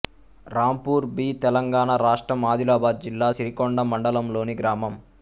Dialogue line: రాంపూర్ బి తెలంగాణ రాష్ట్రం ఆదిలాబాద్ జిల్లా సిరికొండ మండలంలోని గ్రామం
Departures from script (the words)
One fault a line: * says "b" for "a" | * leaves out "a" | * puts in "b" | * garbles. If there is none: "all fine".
all fine